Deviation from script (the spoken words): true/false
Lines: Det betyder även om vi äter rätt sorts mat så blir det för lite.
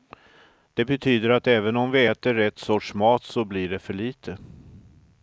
true